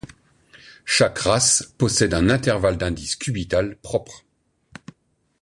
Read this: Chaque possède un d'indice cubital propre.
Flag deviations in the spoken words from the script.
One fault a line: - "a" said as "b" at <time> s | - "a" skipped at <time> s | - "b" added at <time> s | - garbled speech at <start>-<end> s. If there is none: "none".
- "race" added at 1.2 s
- "intervalle" added at 2.3 s